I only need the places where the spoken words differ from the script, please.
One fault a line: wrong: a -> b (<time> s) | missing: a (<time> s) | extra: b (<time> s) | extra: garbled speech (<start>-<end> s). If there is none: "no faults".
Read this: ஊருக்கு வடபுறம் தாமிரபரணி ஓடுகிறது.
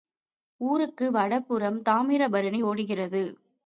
no faults